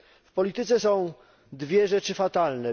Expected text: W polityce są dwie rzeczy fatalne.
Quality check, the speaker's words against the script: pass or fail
pass